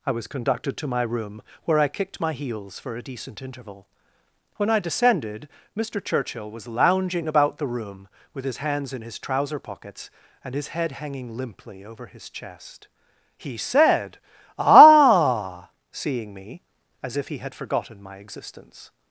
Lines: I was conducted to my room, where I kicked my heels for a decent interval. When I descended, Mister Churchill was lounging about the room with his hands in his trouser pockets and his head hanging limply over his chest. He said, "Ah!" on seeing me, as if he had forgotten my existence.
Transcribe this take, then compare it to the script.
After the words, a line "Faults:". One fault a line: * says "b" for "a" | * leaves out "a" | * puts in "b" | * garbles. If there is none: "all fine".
I was conducted to my room, where I kicked my heels for a decent interval. When I descended, Mister Churchill was lounging about the room with his hands in his trouser pockets and his head hanging limply over his chest. He said, "Ah!" seeing me, as if he had forgotten my existence.
Faults:
* leaves out "on"